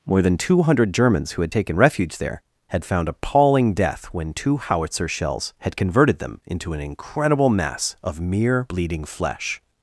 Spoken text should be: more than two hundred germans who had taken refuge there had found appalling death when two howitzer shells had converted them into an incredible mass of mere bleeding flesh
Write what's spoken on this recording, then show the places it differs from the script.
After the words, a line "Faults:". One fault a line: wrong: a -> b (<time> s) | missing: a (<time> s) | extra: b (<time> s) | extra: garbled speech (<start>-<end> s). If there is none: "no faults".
more than two hundred germans who had taken refuge there had found appalling death when two howitzer shells had converted them into an incredible mass of mere bleeding flesh
Faults:
no faults